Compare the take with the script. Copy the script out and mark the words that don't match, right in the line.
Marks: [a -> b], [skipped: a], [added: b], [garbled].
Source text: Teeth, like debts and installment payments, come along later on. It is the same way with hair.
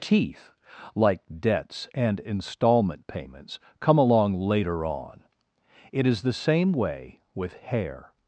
Teeth, like debts and installment payments, come along later on. It is the same way with hair.